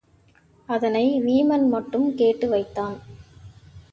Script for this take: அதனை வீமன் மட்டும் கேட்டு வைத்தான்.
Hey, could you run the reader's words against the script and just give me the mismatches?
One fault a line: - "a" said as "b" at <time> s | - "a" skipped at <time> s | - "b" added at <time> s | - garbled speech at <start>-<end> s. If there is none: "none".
none